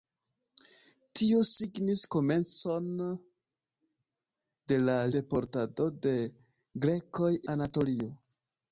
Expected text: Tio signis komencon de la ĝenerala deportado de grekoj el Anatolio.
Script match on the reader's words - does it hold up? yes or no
no